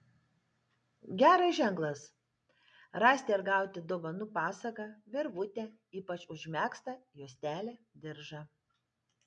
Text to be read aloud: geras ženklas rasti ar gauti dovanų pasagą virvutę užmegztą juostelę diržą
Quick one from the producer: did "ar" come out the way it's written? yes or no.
yes